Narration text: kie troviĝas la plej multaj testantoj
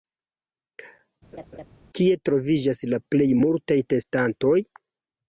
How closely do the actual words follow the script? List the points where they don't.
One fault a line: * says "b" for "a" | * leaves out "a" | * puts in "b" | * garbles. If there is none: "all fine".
all fine